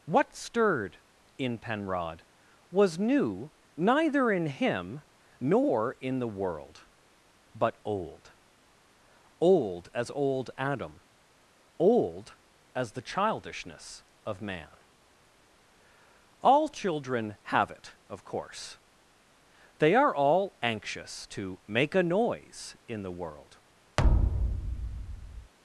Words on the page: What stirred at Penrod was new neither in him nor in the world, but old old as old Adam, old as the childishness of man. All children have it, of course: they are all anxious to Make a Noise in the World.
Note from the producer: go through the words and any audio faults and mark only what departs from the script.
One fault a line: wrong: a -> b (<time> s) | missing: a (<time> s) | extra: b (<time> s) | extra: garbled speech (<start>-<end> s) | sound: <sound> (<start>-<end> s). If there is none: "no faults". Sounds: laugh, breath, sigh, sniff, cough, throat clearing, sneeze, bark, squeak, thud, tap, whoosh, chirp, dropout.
wrong: at -> in (1.4 s)
sound: thud (24.0-25.5 s)